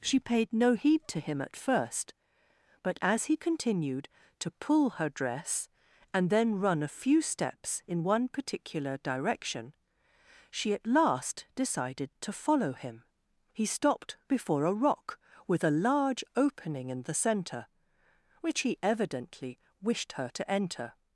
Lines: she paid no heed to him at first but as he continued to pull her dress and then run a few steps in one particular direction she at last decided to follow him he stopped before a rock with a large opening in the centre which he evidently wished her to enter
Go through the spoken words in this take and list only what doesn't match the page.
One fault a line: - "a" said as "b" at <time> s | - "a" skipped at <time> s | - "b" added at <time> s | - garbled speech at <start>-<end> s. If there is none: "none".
none